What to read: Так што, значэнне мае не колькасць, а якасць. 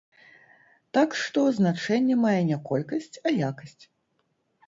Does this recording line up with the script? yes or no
yes